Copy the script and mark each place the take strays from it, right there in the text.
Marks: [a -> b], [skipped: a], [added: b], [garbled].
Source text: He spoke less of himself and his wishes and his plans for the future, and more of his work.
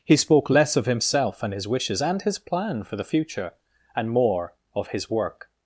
He spoke less of himself and his wishes and his [plans -> plan] for the future, and more of his work.